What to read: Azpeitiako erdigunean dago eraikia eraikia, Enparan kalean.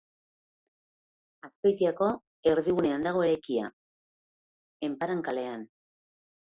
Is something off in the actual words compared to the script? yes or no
yes